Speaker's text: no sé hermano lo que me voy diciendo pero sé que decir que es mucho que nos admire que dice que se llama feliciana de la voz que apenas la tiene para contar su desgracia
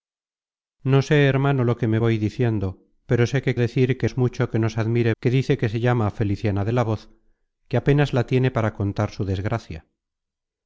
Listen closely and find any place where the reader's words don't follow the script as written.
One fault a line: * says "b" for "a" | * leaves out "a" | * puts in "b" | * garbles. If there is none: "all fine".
all fine